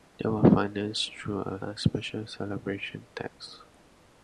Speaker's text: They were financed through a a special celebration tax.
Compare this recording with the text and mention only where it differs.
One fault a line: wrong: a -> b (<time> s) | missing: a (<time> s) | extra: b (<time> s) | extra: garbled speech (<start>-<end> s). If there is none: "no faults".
no faults